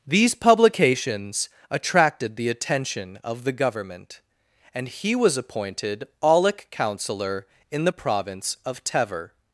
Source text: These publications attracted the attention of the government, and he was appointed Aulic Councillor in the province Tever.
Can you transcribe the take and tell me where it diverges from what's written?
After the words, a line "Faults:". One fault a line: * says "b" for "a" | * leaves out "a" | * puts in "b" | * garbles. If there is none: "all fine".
These publications attracted the attention of the government, and he was appointed Aulic Councillor in the province of Tever.
Faults:
* puts in "of"